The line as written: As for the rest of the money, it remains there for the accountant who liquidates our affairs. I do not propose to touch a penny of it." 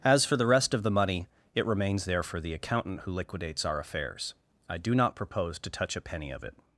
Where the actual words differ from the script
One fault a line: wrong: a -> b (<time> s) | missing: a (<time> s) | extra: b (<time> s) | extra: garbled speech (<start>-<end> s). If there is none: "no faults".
no faults